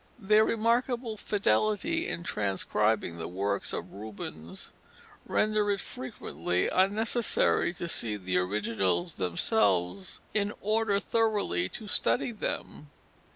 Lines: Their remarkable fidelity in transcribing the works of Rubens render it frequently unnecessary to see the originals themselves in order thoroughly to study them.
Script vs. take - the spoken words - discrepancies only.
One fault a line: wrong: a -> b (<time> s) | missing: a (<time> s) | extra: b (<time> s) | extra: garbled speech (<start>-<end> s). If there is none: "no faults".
no faults